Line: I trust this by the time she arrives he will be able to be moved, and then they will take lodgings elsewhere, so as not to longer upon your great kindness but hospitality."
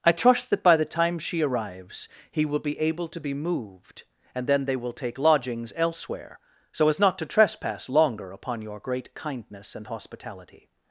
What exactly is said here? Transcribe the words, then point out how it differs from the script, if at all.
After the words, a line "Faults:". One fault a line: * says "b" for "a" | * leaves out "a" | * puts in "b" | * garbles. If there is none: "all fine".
I trust that by the time she arrives he will be able to be moved, and then they will take lodgings elsewhere, so as not to trespass longer upon your great kindness and hospitality."
Faults:
* says "that" for "this"
* puts in "trespass"
* says "and" for "but"